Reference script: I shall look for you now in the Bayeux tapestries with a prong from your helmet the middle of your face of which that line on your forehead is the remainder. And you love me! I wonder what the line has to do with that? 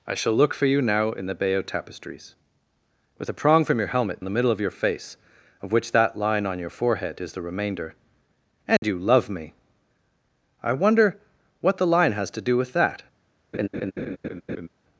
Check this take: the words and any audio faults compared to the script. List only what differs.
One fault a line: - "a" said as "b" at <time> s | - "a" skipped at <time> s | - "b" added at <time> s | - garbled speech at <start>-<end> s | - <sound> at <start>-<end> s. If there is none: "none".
- dropout at 8.8-8.8 s
- laugh at 13.5-14.7 s